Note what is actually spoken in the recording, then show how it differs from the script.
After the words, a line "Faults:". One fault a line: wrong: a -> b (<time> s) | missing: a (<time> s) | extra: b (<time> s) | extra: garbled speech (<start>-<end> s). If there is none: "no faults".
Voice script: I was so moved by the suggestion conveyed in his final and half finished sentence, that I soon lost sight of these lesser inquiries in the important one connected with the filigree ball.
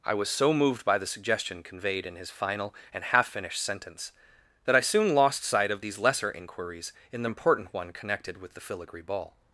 I was so moved by the suggestion conveyed in his final and half finished sentence, that I soon lost sight of these lesser inquiries in the important one connected with the filigree ball.
Faults:
no faults